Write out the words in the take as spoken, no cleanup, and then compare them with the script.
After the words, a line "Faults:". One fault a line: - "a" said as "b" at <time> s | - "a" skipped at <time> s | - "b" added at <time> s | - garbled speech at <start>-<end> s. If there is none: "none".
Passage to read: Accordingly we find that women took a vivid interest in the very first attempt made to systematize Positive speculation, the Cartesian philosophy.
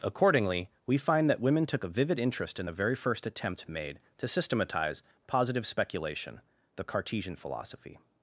Accordingly we find that women took a vivid interest in the very first attempt made to systematize Positive speculation, the Cartesian philosophy.
Faults:
none